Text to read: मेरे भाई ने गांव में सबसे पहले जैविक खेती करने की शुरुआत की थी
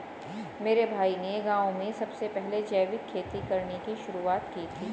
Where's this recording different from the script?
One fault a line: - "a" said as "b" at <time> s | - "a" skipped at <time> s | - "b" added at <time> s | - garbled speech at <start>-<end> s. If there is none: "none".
none